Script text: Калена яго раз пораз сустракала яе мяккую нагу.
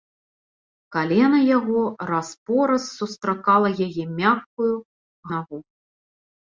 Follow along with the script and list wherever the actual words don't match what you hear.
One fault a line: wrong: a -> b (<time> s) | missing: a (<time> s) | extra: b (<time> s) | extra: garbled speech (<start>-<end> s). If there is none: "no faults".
no faults